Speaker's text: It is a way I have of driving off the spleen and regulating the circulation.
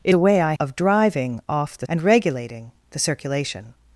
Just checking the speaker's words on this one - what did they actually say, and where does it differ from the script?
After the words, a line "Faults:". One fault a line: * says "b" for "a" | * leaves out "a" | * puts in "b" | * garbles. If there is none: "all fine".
It a way I of driving off the and regulating the circulation.
Faults:
* leaves out "is"
* leaves out "have"
* leaves out "spleen"